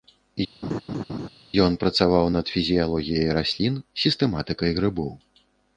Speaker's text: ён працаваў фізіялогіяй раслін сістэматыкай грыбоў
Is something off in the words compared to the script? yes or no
yes